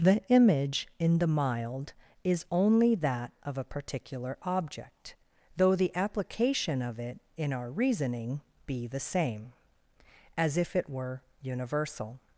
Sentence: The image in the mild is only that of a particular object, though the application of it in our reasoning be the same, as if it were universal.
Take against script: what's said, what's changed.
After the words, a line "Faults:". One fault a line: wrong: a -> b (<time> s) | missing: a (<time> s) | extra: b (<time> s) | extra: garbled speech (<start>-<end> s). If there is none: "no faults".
The image in the mild is only that of a particular object, though the application of it in our reasoning be the same, as if it were universal.
Faults:
no faults